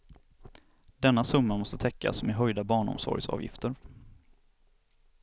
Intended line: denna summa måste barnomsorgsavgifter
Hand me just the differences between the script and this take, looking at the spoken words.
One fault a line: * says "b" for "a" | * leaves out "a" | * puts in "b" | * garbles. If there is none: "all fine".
* puts in "täckas med höjda"